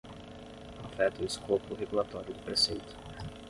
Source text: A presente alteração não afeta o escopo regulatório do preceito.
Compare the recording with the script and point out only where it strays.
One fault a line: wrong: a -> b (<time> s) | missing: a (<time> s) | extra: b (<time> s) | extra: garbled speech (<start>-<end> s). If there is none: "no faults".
missing: presente alteração não (0.8 s)